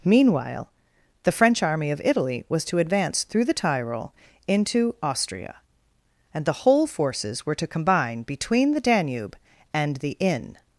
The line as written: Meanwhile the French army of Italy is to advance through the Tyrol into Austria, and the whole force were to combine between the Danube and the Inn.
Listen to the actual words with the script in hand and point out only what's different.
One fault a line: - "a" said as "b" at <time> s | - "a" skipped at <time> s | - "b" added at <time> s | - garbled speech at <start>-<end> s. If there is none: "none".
- "is" said as "was" at 2.5 s
- "force" said as "forces" at 6.9 s